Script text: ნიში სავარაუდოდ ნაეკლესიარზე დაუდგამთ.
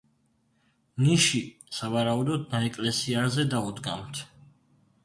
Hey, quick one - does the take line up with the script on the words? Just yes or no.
yes